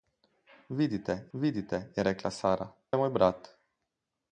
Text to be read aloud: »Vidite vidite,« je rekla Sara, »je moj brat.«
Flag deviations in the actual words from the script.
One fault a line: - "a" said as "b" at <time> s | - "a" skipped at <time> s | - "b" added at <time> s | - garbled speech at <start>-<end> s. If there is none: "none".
none